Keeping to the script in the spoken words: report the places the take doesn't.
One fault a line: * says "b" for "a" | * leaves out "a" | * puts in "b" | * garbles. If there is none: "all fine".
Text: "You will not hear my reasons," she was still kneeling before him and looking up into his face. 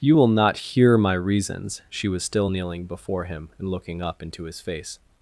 all fine